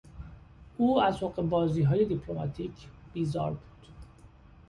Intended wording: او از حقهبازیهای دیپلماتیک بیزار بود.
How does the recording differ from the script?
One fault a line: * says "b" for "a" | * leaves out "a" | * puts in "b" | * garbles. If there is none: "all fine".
all fine